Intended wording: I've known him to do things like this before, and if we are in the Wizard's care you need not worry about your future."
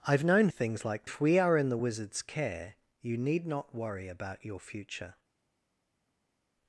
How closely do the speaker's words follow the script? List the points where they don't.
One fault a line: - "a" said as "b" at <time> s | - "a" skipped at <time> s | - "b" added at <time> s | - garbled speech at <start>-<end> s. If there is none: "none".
- "him to do" skipped at 0.5 s
- "this before and" skipped at 1.1 s